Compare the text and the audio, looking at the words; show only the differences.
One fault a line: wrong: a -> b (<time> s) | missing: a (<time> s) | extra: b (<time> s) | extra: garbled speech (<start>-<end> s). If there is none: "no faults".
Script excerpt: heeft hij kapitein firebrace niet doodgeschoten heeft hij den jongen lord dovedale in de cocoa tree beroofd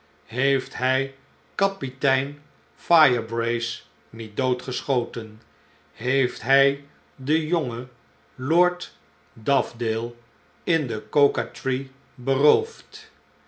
no faults